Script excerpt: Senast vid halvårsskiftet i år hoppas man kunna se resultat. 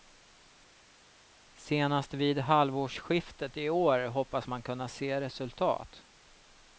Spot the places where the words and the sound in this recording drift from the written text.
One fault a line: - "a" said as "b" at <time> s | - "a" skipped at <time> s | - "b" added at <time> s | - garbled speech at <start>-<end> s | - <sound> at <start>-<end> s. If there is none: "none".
none